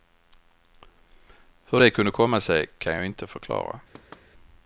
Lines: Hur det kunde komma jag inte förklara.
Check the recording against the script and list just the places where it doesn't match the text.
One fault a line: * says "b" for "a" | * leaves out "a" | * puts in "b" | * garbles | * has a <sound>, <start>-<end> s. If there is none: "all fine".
* puts in "sig kan"
* has a thud, 3.9-4.3 s